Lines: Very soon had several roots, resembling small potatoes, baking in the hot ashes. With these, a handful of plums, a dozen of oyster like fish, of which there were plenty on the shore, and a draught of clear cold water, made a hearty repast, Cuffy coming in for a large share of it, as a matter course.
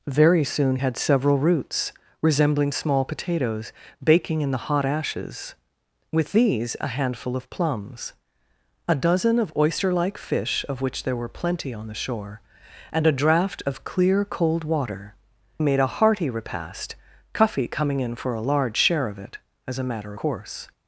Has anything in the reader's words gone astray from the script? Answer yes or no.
no